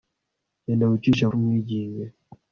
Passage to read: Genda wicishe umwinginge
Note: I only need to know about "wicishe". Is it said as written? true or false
true